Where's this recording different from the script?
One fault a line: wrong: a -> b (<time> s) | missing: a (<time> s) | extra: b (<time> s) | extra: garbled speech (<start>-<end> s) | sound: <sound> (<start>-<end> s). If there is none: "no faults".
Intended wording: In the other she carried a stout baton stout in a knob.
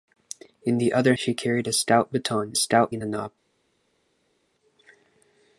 no faults